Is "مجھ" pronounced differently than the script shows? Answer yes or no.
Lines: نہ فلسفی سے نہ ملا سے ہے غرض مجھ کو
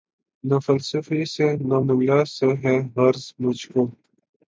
no